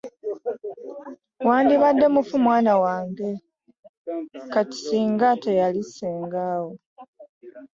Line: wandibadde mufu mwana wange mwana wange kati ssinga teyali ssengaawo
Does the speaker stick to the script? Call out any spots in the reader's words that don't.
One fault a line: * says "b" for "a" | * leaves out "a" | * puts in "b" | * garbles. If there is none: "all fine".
* leaves out "mwana wange"